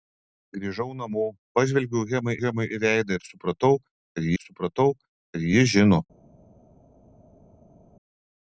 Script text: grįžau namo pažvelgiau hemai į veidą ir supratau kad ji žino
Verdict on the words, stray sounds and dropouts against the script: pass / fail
fail